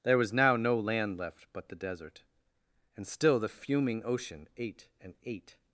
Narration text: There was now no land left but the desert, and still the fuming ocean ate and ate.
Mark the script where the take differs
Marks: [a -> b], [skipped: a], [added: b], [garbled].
There was now no land left but the desert, and still the fuming ocean ate and ate.